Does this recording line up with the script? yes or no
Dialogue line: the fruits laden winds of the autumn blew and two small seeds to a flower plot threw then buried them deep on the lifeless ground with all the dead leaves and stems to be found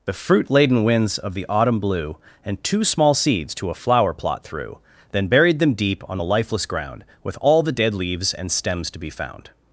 no